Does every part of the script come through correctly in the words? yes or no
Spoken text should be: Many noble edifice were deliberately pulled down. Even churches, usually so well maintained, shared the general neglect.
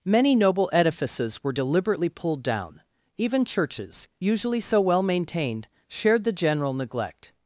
no